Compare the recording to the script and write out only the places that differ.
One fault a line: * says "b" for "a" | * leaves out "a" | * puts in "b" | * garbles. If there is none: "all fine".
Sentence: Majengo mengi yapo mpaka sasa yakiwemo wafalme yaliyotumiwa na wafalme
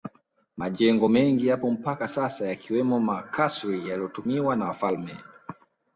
* says "makasri" for "wafalme"